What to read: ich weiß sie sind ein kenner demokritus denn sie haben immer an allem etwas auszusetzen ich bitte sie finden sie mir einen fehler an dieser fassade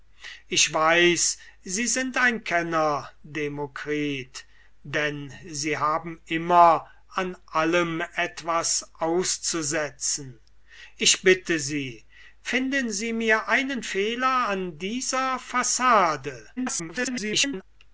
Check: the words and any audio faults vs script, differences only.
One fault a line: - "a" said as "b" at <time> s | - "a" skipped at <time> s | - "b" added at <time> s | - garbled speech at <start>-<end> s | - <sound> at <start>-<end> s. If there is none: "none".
- garbled speech at 16.6-17.6 s